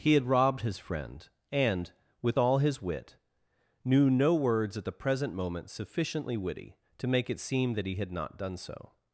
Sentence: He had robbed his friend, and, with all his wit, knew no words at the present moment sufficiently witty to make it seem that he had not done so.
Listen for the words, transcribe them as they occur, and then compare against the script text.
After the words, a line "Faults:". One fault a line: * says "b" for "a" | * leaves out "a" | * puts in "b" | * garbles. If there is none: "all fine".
He had robbed his friend, and, with all his wit, knew no words at the present moment sufficiently witty to make it seem that he had not done so.
Faults:
all fine